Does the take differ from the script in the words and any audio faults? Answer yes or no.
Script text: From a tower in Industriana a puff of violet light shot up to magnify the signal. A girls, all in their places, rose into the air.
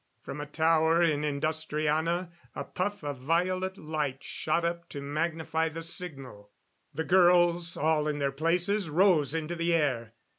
yes